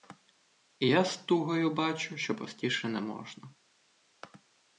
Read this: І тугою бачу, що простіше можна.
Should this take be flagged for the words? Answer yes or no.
yes